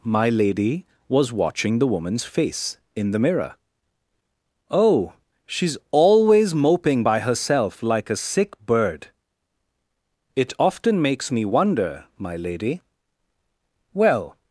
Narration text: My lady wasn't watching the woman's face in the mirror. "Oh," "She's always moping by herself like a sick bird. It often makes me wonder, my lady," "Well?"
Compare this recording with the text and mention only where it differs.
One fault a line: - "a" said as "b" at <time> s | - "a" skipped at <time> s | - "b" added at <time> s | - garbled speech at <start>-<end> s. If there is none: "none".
- "wasn't" said as "was" at 1.1 s